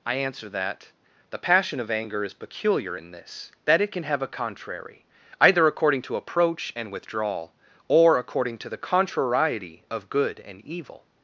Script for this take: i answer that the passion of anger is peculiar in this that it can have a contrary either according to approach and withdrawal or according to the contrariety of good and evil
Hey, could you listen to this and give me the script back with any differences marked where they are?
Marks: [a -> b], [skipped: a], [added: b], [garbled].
i answer that the passion of anger is peculiar in this that it can have a contrary either according to approach and withdrawal or according to the contrariety of good and evil